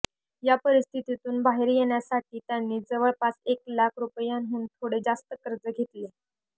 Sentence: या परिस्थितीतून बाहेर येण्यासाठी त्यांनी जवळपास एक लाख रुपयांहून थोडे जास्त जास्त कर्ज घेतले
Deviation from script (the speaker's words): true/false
true